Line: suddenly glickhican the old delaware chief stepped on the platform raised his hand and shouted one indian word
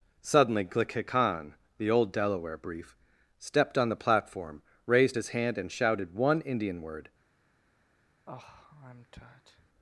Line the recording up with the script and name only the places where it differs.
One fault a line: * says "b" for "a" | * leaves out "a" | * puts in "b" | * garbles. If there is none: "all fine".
* says "brief" for "chief"